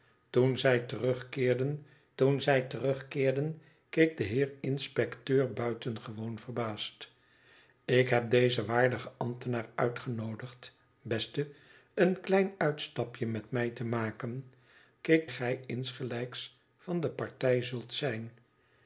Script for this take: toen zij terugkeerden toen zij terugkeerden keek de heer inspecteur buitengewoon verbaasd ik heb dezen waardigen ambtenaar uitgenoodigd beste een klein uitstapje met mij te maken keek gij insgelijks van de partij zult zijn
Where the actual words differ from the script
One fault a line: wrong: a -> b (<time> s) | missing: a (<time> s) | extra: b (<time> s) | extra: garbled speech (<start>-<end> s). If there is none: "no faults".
no faults